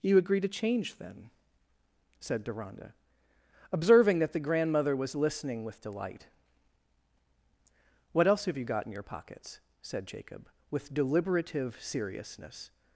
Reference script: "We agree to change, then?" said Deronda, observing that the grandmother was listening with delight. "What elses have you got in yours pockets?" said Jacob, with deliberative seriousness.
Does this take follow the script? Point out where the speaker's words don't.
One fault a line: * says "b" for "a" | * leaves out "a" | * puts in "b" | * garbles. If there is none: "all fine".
* says "You" for "We"
* says "else" for "elses"
* says "your" for "yours"